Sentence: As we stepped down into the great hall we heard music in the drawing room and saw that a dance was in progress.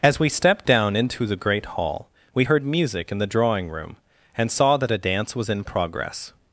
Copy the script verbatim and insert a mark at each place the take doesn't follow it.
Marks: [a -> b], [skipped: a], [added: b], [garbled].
As we stepped down into the great hall we heard music in the drawing room and saw that a dance was in progress.